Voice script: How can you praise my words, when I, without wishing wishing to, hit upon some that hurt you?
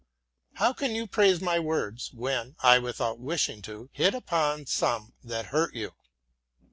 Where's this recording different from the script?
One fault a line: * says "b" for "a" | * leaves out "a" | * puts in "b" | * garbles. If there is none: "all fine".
* leaves out "wishing"